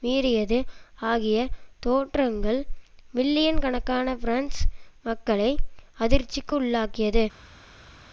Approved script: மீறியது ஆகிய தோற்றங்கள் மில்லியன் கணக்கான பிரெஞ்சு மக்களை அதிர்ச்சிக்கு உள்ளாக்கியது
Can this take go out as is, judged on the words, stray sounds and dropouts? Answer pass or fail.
pass